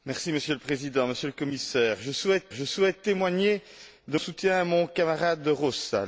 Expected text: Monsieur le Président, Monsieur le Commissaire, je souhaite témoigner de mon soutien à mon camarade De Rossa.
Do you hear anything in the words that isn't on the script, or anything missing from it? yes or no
yes